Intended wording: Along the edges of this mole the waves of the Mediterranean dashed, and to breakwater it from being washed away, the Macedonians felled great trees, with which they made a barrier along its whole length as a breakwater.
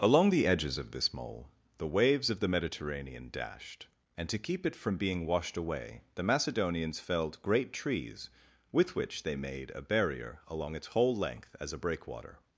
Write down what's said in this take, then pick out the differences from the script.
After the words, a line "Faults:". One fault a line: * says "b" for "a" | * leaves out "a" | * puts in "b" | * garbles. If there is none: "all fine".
Along the edges of this mole the waves of the Mediterranean dashed, and to keep it from being washed away, the Macedonians felled great trees, with which they made a barrier along its whole length as a breakwater.
Faults:
* says "keep" for "breakwater"